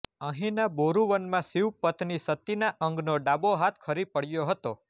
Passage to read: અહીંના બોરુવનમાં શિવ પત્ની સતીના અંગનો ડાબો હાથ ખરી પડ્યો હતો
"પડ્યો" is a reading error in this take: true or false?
false